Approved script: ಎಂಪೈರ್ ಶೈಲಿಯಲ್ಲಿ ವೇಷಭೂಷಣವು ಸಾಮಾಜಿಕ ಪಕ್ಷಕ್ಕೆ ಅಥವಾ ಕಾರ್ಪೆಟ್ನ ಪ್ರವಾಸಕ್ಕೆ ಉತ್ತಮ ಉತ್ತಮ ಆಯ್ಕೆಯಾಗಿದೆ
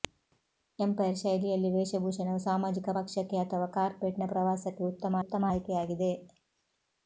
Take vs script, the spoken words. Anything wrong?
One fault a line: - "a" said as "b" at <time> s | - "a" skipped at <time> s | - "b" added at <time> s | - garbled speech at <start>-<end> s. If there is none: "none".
none